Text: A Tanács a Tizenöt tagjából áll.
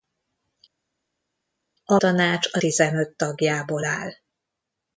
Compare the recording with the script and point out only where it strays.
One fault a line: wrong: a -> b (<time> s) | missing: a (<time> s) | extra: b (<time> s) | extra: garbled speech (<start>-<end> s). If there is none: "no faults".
no faults